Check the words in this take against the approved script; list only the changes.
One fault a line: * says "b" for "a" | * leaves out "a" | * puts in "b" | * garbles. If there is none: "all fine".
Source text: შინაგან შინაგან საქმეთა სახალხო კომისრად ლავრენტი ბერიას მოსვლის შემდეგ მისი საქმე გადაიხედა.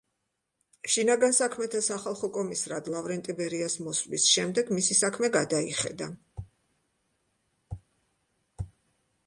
* leaves out "შინაგან"